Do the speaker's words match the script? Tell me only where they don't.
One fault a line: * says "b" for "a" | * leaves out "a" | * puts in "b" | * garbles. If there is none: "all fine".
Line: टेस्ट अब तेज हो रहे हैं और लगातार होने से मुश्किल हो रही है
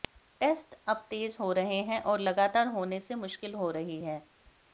all fine